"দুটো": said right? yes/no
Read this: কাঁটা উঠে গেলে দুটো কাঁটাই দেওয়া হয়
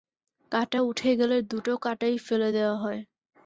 yes